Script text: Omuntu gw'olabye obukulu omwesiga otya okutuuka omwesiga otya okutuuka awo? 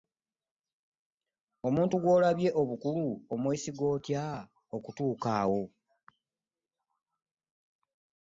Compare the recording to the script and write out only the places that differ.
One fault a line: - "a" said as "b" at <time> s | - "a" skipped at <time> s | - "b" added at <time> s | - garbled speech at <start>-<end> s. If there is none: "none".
- "omwesiga otya okutuuka" skipped at 5.3 s